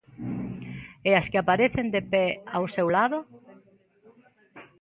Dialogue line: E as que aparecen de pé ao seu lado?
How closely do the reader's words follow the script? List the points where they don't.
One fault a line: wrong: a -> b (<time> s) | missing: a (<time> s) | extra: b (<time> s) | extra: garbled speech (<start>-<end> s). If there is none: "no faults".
no faults